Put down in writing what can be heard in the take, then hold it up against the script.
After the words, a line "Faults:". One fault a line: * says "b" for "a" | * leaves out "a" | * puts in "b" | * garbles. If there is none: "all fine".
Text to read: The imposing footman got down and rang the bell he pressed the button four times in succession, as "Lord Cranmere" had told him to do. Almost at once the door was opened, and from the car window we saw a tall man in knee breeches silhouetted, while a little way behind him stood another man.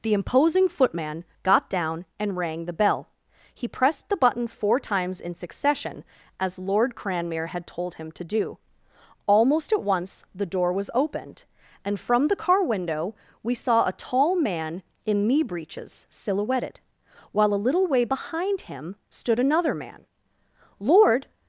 The imposing footman got down and rang the bell he pressed the button four times in succession, as "Lord Cranmere" had told him to do. Almost at once the door was opened, and from the car window we saw a tall man in knee breeches silhouetted, while a little way behind him stood another man. "Lord
Faults:
* puts in "Lord"